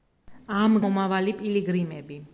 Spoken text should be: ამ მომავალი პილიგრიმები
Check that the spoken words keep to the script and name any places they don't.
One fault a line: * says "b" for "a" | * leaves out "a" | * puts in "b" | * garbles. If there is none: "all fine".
all fine